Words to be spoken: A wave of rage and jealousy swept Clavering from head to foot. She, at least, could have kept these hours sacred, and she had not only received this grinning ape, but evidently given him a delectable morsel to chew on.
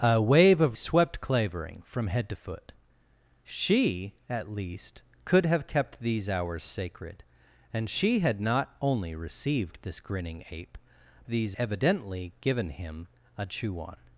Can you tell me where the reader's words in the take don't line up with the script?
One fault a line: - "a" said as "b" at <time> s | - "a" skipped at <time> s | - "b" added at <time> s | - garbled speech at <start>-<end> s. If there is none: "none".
- "rage and jealousy" skipped at 0.8 s
- "but" said as "these" at 11.3 s
- "delectable morsel to" skipped at 13.5 s